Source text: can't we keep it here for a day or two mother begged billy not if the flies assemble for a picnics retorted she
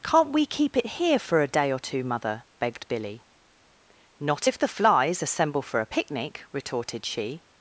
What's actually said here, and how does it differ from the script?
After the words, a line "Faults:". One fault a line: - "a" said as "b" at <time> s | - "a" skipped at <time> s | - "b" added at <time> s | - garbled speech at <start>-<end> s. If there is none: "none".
can't we keep it here for a day or two mother begged billy not if the flies assemble for a picnic retorted she
Faults:
- "picnics" said as "picnic" at 5.9 s